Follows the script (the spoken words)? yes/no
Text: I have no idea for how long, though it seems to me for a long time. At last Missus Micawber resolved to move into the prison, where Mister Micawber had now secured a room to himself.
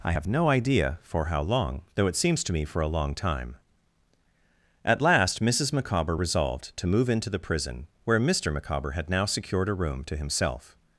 yes